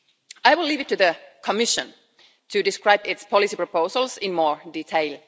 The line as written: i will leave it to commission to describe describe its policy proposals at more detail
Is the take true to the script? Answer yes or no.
no